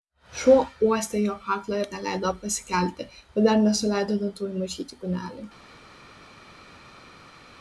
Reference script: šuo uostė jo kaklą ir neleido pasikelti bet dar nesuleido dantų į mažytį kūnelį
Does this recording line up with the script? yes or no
yes